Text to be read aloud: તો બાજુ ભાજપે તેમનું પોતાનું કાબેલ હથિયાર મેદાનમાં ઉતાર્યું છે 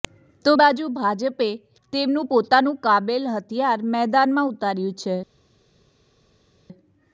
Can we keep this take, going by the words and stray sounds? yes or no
yes